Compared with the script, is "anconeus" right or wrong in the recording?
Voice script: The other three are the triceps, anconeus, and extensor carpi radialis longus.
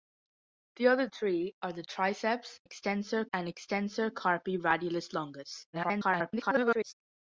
wrong